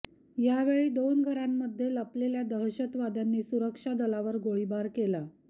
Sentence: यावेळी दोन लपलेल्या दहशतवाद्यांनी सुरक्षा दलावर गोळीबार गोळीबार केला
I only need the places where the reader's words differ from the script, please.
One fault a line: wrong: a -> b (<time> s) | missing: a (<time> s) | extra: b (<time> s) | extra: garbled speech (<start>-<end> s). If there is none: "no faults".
extra: घरांमध्ये (1.2 s)
missing: गोळीबार (4.9 s)